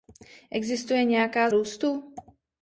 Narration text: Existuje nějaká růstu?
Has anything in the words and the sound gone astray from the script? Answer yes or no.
no